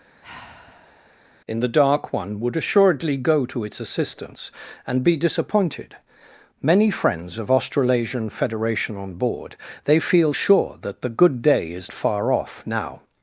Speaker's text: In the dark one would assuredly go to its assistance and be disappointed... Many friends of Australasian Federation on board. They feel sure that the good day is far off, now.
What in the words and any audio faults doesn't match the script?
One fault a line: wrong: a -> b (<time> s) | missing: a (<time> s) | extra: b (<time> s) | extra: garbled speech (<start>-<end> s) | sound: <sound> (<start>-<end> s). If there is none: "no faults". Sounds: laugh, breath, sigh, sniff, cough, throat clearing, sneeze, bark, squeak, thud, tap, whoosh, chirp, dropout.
sound: sigh (0.2-1.2 s)